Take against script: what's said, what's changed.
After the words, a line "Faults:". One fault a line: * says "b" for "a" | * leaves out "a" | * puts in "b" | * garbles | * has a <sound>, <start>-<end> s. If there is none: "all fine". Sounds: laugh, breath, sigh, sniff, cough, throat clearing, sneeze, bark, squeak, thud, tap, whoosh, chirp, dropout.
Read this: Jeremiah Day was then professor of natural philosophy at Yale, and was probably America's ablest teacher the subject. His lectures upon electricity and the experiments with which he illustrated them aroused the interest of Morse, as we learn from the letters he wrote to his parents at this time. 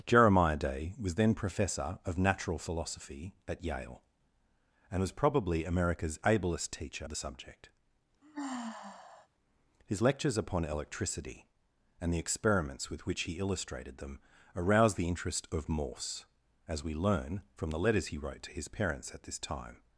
Jeremiah Day was then professor of natural philosophy at Yale, and was probably America's ablest teacher the subject. His lectures upon electricity and the experiments with which he illustrated them aroused the interest of Morse, as we learn from the letters he wrote to his parents at this time.
Faults:
* has a sigh, 8.2-9.3 s